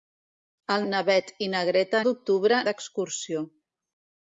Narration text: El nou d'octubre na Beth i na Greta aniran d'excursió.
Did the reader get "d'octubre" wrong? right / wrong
wrong